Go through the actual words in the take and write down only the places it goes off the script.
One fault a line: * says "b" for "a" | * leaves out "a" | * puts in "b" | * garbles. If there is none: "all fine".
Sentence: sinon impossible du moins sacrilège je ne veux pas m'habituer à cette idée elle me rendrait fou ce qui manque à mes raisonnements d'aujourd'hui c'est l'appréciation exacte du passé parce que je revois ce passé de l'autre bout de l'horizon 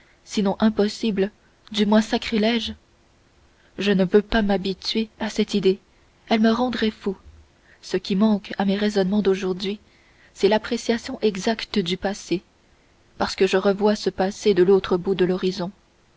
all fine